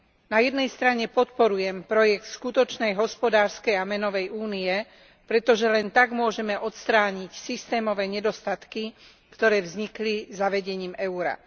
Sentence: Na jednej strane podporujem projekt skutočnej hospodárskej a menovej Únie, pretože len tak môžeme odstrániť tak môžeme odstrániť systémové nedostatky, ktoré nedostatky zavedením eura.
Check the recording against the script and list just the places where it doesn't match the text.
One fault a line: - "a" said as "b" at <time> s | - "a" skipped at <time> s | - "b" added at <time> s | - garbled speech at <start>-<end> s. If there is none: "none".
- "tak môžeme odstrániť" skipped at 7.3 s
- "nedostatky" said as "vznikli" at 9.6 s